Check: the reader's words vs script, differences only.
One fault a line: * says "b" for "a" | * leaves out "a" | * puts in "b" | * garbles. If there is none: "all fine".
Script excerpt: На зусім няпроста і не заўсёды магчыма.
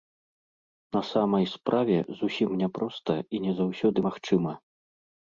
* puts in "самай справе"